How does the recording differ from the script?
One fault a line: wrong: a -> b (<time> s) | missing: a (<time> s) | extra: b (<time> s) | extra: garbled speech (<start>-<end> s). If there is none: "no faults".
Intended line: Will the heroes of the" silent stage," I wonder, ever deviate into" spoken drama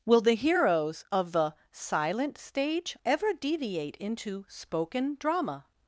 missing: I wonder (3.0 s)